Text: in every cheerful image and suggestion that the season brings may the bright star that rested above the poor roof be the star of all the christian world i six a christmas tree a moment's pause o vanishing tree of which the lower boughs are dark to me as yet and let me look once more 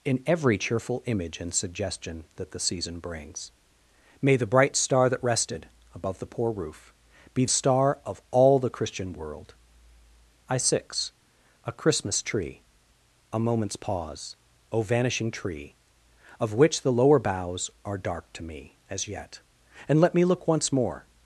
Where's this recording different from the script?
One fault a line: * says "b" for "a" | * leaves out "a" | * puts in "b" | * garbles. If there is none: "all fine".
* leaves out "the"